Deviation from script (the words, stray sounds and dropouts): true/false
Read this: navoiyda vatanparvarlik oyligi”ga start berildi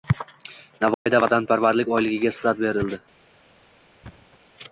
true